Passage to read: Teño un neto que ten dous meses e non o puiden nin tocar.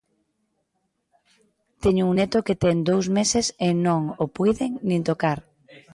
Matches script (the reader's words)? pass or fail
pass